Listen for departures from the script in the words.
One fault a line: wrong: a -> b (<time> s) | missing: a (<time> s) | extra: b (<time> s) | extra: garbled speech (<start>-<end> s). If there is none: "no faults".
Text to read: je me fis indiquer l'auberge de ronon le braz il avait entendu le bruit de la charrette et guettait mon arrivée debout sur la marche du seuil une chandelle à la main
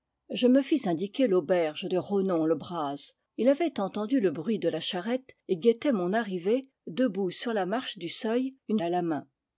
missing: chandelle (8.8 s)